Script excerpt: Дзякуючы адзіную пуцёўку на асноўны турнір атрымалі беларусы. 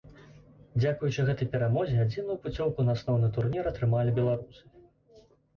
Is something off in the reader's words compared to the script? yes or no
yes